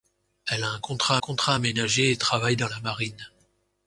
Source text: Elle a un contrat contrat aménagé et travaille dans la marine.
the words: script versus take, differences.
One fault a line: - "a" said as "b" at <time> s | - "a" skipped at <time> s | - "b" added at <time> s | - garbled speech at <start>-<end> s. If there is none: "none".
none